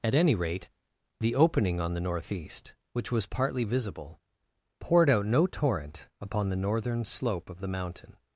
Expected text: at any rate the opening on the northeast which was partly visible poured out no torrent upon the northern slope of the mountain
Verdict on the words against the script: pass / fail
pass